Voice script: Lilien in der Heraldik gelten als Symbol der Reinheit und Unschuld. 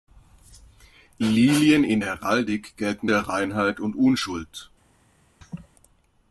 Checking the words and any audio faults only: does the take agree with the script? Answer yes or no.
no